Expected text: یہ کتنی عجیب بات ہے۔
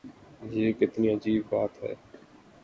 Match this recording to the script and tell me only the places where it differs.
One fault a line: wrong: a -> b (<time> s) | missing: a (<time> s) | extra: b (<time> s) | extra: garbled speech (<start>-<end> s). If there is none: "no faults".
no faults